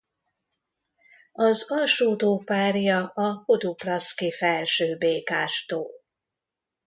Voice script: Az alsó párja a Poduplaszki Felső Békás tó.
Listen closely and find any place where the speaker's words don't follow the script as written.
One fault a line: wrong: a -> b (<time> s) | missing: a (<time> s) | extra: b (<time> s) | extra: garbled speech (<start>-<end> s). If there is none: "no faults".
extra: tó (2.1 s)